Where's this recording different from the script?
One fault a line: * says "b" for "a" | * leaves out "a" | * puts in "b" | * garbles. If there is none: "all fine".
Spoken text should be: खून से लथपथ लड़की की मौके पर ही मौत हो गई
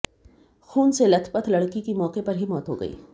all fine